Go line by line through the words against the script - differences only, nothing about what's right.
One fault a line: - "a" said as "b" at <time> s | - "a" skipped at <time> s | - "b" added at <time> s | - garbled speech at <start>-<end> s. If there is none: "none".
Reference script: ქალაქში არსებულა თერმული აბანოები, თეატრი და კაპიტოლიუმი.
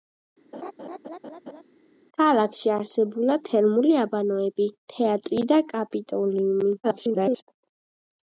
- garbled speech at 6.8-7.4 s